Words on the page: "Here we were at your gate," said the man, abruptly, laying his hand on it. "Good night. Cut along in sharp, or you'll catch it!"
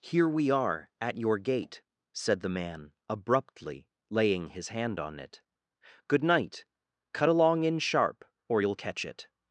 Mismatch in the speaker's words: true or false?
true